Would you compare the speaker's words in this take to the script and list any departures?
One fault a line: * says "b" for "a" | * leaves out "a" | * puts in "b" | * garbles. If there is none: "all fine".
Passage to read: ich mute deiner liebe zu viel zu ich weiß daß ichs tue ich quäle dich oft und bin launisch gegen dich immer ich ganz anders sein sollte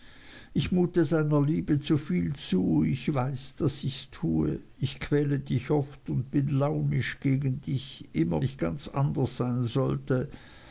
all fine